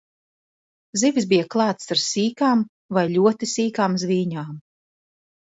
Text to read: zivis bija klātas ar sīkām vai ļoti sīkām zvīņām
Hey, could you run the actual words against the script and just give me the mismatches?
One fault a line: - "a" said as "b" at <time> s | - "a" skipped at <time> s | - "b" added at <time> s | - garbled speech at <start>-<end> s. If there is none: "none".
none